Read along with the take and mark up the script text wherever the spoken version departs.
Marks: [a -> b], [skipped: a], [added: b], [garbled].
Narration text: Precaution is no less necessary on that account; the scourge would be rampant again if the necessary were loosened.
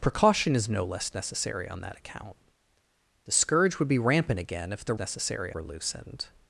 Precaution is no less necessary on that account; the scourge would be rampant again if the necessary were loosened.